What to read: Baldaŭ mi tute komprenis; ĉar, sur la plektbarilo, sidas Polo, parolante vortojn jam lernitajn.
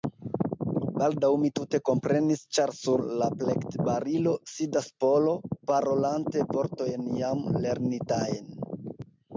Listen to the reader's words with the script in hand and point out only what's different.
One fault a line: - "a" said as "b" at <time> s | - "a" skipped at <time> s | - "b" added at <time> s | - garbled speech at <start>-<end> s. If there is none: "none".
none